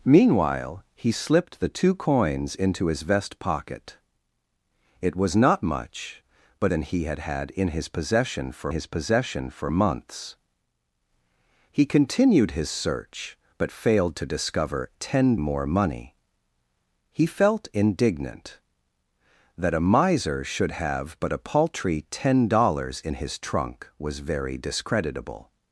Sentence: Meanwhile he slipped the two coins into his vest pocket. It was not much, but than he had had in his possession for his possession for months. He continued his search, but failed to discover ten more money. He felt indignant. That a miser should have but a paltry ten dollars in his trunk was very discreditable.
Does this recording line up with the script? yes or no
yes